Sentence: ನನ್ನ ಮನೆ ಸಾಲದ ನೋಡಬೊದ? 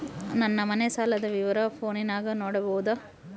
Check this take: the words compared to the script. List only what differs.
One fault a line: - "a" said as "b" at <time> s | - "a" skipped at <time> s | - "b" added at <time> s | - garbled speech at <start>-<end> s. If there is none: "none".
- "ವಿವರ ಫೋನಿನಾಗ" added at 1.3 s